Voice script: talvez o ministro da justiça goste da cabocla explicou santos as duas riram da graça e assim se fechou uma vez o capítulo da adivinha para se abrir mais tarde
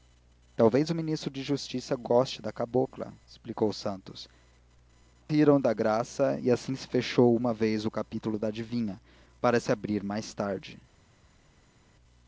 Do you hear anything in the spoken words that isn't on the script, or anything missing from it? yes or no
yes